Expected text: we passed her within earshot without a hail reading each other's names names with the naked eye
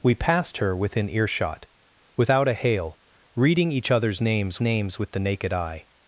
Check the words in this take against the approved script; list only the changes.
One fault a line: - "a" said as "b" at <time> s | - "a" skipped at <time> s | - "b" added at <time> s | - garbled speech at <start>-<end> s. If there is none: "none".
none